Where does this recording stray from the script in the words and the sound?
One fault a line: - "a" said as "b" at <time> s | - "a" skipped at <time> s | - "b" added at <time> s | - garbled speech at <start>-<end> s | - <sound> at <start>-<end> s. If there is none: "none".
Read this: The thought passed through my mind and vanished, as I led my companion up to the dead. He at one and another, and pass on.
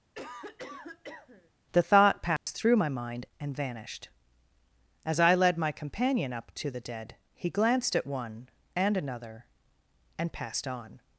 - cough at 0.1-1.5 s
- dropout at 2.4-2.5 s
- "glanced" added at 7.5 s
- "pass" said as "passed" at 10.3 s